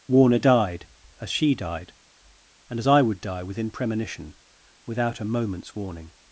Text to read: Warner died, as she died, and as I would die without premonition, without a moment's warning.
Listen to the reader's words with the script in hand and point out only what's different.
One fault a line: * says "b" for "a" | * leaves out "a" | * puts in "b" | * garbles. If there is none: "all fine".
* says "within" for "without"